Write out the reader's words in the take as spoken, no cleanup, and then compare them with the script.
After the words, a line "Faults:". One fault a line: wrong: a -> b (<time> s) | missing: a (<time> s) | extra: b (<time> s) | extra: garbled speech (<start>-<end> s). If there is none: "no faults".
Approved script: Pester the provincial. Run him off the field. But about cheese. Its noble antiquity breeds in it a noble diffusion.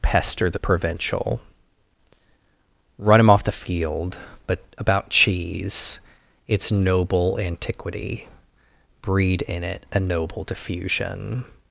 Pester the provincial. Run him off the field. But about cheese. Its noble antiquity breed in it a noble diffusion.
Faults:
wrong: breeds -> breed (9.0 s)